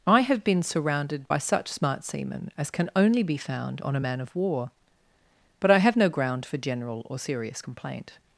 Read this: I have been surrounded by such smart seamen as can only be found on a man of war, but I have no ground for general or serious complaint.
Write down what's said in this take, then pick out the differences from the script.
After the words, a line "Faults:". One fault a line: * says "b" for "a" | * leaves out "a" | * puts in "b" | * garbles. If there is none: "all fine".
I have been surrounded by such smart seamen as can only be found on a man of war, but I have no ground for general or serious complaint.
Faults:
all fine